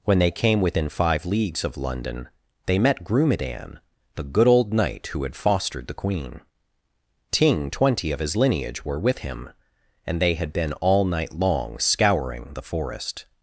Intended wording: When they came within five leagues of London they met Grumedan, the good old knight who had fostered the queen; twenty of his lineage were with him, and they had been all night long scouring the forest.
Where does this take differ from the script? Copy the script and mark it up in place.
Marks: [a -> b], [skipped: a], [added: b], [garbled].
When they came within five leagues of London they met Grumedan, the good old knight who had fostered the queen; [added: ting] twenty of his lineage were with him, and they had been all night long scouring the forest.